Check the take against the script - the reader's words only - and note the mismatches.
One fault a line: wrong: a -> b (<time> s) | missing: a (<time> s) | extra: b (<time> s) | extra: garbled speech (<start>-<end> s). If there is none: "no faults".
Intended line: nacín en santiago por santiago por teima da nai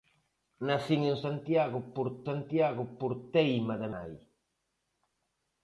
no faults